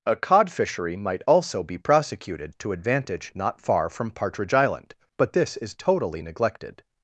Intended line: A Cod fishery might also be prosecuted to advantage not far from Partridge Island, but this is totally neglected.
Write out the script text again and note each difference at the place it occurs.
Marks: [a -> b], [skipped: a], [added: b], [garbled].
A Cod fishery might also be prosecuted to advantage not far from Partridge Island, but this is totally neglected.